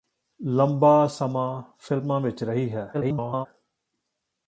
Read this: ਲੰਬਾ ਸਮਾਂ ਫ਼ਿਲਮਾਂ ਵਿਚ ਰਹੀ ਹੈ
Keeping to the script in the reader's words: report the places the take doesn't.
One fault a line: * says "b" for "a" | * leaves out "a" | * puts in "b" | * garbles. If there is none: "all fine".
* garbles